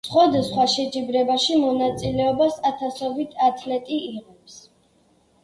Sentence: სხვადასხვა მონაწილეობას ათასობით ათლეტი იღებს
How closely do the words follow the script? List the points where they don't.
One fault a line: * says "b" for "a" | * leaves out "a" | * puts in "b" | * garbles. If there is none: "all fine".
* puts in "შეჯიბრებაში"